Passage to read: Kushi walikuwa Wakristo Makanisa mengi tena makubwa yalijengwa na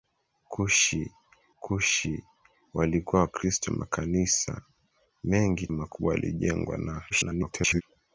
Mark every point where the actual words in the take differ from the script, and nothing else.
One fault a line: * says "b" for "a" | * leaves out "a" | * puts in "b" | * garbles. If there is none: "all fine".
* puts in "kushi"
* leaves out "tena"
* garbles